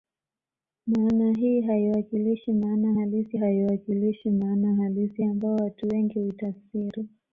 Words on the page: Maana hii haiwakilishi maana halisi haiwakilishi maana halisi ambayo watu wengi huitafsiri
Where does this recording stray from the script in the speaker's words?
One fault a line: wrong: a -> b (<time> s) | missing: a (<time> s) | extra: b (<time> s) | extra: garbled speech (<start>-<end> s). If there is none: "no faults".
no faults